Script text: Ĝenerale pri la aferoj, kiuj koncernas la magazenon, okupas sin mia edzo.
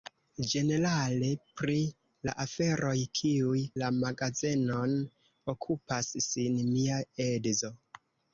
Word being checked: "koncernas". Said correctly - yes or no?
no